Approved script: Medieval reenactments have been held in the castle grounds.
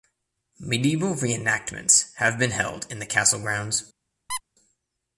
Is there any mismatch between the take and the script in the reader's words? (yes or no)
no